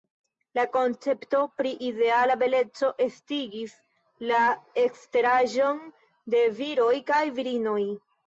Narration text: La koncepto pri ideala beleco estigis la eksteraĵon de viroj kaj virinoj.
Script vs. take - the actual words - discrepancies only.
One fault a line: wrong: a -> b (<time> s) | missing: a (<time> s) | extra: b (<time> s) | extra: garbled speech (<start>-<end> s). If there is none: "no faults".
no faults